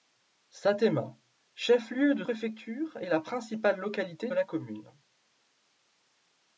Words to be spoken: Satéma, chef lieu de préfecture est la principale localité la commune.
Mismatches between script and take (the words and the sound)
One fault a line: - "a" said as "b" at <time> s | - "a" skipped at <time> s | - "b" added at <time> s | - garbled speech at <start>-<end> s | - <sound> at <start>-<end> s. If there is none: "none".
none